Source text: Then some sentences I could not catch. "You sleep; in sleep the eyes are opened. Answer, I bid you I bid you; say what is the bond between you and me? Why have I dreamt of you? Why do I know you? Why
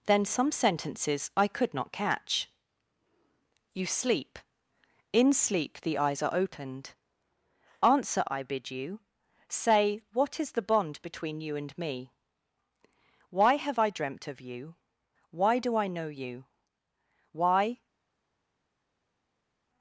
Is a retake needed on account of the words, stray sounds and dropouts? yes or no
yes